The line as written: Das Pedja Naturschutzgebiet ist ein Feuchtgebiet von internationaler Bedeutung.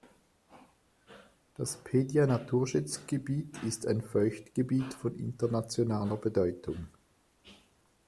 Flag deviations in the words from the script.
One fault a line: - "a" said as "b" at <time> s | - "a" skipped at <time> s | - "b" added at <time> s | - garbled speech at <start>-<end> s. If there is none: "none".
none